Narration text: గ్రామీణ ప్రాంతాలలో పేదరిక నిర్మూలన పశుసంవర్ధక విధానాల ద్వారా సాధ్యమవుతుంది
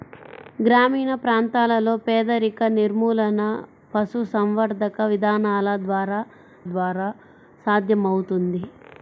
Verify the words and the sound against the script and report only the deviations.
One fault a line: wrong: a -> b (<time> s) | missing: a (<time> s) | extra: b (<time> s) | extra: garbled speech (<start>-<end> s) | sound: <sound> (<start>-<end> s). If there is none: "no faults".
extra: ద్వారా (6.7 s)